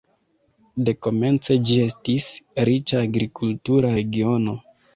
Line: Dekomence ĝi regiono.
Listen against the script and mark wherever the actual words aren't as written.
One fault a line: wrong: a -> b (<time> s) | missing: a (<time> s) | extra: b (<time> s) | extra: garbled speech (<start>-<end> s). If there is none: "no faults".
extra: estis riĉa agrikultura (1.8 s)